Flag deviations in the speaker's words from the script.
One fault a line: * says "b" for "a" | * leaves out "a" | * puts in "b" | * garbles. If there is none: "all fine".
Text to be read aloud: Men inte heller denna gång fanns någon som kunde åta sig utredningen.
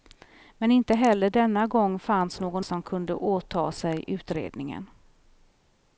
all fine